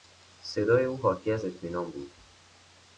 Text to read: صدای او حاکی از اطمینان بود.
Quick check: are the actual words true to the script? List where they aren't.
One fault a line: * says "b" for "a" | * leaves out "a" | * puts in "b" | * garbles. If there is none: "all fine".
all fine